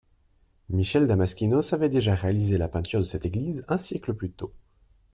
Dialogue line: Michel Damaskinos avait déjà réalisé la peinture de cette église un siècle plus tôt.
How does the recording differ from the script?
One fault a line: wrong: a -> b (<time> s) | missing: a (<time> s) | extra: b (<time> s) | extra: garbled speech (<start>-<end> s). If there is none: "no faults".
no faults